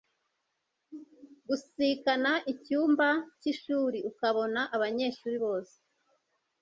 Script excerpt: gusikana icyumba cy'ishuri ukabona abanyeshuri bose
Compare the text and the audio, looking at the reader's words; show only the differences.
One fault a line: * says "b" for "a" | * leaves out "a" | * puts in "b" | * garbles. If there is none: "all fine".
all fine